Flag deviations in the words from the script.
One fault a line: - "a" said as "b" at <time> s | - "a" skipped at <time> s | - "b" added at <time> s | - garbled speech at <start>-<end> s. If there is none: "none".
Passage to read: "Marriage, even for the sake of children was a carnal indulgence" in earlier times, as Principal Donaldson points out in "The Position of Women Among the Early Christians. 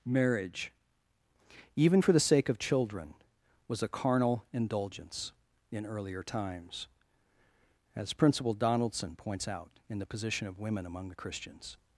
- "Early" skipped at 11.2 s